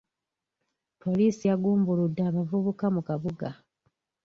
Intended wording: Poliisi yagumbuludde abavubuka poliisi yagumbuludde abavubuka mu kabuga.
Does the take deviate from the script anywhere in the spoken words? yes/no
yes